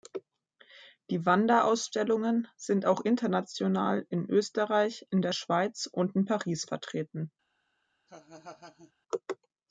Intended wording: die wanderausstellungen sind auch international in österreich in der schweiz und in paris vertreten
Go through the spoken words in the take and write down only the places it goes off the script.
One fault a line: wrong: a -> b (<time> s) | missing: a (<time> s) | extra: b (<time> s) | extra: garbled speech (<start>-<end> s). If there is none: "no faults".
no faults